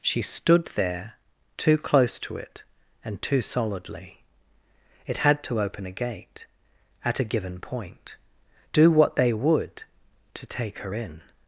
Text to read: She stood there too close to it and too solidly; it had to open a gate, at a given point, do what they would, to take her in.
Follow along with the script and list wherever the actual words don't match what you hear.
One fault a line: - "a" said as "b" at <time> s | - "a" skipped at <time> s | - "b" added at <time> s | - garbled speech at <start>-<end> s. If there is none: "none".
none